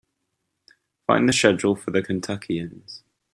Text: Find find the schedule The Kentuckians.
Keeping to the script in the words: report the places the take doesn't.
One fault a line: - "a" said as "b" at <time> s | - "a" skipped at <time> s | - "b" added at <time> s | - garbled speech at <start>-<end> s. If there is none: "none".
- "find" skipped at 1.3 s
- "for" added at 1.8 s